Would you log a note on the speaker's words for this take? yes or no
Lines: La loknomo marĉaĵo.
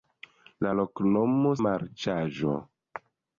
no